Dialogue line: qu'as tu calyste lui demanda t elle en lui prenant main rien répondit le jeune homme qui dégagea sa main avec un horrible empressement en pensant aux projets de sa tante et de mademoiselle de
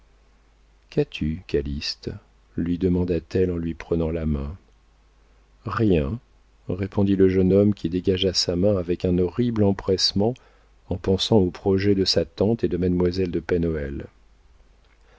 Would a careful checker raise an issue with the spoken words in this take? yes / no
yes